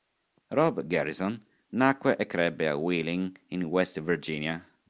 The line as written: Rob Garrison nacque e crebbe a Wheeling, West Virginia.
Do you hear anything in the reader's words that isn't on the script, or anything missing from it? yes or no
yes